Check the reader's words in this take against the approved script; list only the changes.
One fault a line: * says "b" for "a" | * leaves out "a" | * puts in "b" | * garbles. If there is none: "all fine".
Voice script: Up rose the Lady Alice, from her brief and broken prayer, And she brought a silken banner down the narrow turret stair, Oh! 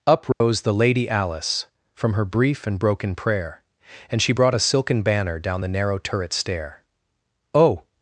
all fine